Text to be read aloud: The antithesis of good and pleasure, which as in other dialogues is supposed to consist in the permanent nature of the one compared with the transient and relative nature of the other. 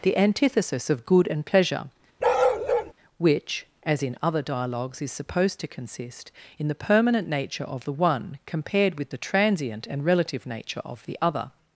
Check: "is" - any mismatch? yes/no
no